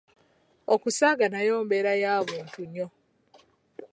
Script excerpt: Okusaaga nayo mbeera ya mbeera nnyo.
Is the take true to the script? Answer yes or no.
no